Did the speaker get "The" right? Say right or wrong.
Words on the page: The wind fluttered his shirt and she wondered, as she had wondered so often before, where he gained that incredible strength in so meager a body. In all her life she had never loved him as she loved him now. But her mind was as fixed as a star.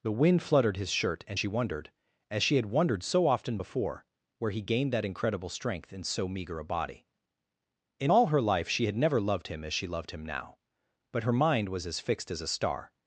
right